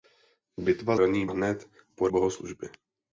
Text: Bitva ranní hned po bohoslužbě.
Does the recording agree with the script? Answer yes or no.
yes